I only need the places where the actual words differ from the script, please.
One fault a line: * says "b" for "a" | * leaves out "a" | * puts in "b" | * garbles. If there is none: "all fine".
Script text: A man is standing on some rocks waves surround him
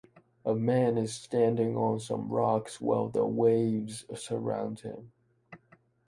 * puts in "while the"